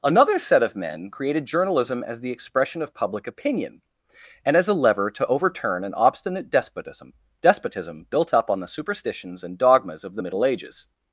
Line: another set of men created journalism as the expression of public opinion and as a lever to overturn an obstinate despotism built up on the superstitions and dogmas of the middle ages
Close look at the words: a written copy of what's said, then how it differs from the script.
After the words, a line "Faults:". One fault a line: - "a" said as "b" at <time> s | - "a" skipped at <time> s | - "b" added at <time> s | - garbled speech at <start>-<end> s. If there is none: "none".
another set of men created journalism as the expression of public opinion and as a lever to overturn an obstinate despotism despotism built up on the superstitions and dogmas of the middle ages
Faults:
- "despotism" added at 7.4 s